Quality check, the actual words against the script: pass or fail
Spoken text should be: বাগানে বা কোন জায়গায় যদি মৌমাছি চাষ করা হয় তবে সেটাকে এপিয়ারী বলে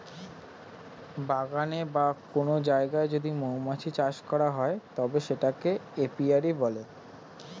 pass